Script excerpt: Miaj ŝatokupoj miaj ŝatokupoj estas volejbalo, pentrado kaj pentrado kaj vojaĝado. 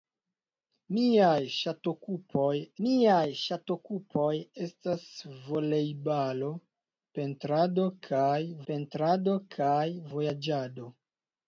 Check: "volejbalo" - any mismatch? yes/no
no